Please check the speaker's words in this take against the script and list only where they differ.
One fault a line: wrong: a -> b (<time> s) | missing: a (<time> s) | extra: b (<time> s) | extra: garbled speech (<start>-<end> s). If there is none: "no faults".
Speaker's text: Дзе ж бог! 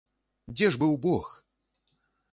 extra: быў (0.8 s)